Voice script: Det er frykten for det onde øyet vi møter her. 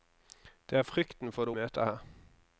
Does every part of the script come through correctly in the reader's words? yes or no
no